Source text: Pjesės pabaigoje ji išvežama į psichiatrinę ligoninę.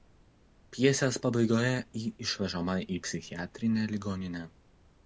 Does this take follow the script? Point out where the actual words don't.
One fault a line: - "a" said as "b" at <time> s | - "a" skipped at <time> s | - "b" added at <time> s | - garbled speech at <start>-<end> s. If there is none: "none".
none